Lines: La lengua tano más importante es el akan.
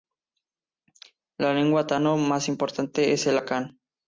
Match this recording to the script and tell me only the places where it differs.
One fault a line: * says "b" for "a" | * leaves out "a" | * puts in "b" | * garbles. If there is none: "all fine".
all fine